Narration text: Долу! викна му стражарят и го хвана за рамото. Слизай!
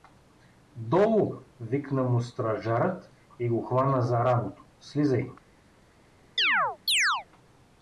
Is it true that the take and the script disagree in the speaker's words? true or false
false